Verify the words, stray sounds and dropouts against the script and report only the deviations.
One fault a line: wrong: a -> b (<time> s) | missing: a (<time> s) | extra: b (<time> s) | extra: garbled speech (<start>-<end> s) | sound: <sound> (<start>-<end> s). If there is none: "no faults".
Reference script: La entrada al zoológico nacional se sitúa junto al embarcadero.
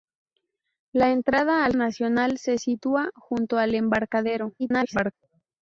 missing: zoológico (1.8 s)
extra: garbled speech (4.6-5.1 s)